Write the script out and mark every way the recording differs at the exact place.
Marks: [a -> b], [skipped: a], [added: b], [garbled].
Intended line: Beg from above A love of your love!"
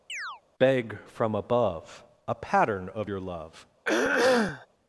Beg from above A [love -> pattern] of your love!"